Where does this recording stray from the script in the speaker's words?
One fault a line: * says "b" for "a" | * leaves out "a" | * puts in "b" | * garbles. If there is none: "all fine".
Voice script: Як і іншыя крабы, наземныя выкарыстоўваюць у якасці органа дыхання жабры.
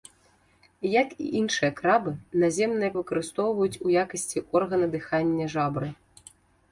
all fine